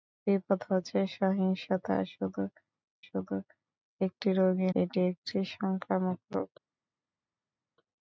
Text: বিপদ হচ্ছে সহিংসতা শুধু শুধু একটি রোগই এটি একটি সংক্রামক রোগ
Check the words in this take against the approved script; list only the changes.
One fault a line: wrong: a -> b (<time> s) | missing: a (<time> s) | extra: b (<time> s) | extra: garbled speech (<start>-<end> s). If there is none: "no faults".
no faults